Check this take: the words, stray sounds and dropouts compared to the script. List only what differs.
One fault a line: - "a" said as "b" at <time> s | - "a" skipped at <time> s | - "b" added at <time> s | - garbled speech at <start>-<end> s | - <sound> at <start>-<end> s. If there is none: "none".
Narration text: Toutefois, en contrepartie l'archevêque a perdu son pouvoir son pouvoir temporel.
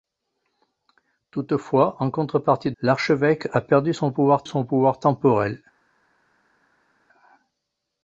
none